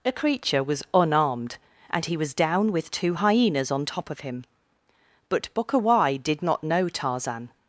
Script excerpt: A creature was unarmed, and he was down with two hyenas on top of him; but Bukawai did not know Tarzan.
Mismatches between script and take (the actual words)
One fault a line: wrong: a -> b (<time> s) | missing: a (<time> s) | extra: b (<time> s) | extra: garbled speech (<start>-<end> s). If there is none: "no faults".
no faults